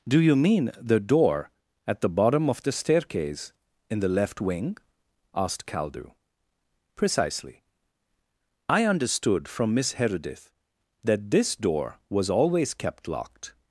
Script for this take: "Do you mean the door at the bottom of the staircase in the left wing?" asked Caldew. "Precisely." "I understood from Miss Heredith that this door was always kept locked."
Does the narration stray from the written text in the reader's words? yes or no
no